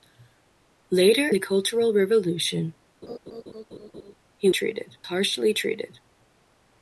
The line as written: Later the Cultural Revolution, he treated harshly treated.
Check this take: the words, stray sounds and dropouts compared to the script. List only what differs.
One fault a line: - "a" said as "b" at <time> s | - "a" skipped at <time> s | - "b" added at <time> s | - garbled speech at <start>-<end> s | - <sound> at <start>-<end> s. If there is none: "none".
- laugh at 3.0-4.2 s